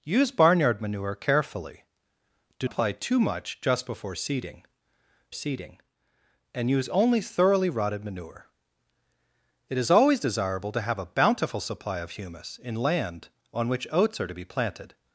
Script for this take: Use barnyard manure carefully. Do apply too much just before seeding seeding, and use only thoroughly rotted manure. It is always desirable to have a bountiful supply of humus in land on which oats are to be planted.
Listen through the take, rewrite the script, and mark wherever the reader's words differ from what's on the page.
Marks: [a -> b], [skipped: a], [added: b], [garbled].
Use barnyard manure carefully. Do apply too much just before seeding seeding, and use only thoroughly rotted manure. It is always desirable to have a bountiful supply of humus in land on which oats are to be planted.